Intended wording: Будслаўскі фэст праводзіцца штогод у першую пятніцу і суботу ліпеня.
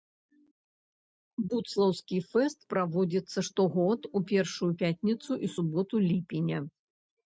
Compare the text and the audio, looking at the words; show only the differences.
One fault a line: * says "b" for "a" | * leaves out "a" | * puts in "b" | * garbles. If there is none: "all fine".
all fine